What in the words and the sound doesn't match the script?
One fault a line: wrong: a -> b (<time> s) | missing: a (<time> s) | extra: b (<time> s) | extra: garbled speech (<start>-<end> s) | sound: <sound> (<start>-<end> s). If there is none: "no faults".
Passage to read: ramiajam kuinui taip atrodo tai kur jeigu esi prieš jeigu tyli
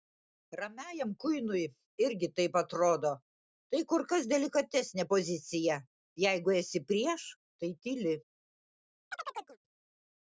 extra: irgi (2.0 s)
extra: kas delikatesnė pozicija (4.1 s)
wrong: jeigu -> tai (7.6 s)
sound: chirp (9.1-9.6 s)